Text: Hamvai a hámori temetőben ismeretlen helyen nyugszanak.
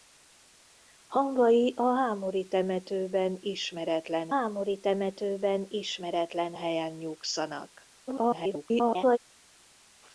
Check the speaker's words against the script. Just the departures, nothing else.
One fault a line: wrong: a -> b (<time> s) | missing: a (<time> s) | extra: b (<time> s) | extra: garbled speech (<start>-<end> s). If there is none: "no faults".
extra: hámori temetőben ismeretlen (4.3 s)
extra: garbled speech (8.1-9.2 s)